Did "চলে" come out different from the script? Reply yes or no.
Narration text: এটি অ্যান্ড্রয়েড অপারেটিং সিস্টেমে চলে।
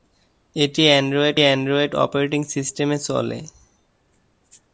no